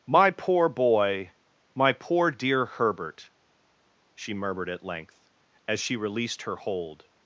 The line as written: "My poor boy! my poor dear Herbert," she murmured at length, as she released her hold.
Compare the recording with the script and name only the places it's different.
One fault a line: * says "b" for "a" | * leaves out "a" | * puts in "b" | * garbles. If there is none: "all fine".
all fine